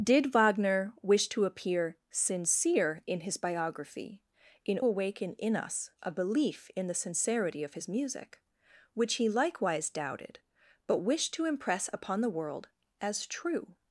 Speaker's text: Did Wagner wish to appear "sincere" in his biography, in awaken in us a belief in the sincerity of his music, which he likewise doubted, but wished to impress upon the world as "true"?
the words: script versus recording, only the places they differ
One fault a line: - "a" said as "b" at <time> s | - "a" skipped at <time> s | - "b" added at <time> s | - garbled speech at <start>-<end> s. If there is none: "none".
none